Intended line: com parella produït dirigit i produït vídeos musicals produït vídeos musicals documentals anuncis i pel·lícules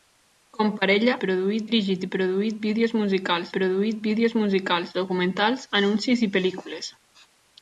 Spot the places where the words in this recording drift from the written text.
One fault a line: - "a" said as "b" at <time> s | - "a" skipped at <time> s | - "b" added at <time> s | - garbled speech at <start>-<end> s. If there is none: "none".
none